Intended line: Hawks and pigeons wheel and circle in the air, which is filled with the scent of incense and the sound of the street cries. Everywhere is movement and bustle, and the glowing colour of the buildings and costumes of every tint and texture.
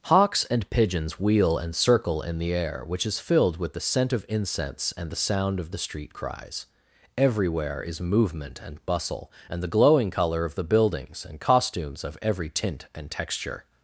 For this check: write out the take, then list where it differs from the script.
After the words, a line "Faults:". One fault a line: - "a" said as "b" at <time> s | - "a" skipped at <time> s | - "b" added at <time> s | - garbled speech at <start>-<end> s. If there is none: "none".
Hawks and pigeons wheel and circle in the air, which is filled with the scent of incense and the sound of the street cries. Everywhere is movement and bustle, and the glowing colour of the buildings and costumes of every tint and texture.
Faults:
none